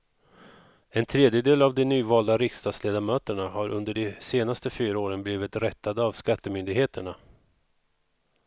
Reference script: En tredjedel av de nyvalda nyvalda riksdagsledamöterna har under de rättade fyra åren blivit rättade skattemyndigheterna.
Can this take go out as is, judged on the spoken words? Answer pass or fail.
fail